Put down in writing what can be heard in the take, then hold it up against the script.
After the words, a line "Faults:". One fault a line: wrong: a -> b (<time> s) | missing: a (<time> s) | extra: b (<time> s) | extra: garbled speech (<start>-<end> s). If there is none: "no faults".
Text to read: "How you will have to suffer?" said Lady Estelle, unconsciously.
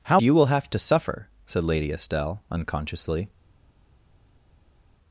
"How you will have to suffer?" said Lady Estelle, unconsciously.
Faults:
no faults